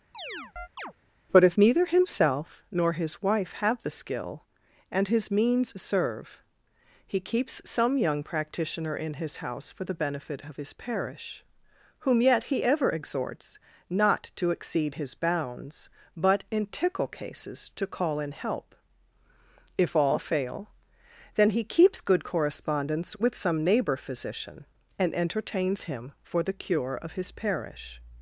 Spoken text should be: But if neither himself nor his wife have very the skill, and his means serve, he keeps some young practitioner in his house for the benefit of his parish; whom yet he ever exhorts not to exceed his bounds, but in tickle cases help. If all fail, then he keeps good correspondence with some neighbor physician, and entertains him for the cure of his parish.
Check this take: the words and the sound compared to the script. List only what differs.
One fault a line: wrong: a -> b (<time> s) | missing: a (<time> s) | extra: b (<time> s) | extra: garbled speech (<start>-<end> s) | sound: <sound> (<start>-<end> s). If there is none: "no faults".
sound: chirp (0.1-0.9 s)
missing: very (3.8 s)
extra: to call in (17.8 s)